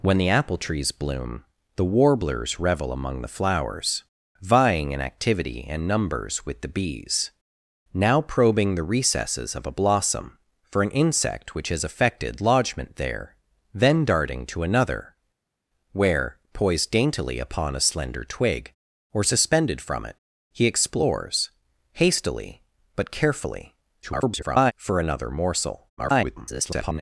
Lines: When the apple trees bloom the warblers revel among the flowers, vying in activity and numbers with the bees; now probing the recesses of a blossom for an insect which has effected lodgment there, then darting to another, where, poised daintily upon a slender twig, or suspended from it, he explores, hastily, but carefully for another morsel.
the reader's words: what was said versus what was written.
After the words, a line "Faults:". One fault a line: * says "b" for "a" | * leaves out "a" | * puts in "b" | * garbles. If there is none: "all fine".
When the apple trees bloom the warblers revel among the flowers, vying in activity and numbers with the bees; now probing the recesses of a blossom for an insect which has effected lodgment there, then darting to another, where, poised daintily upon a slender twig, or suspended from it, he explores, hastily, but carefully [garbled] for another morsel. [garbled]
Faults:
* garbles
* garbles